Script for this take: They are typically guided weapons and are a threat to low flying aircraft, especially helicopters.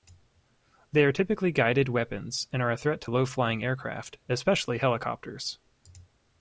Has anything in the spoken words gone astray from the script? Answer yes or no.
no